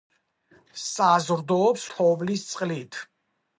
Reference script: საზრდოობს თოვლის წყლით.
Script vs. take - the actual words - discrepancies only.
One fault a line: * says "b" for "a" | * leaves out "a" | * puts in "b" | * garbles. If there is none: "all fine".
all fine